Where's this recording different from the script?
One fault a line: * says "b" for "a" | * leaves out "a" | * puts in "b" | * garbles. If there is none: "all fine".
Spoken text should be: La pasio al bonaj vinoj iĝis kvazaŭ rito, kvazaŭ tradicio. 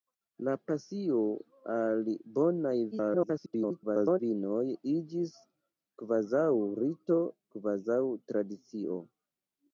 * garbles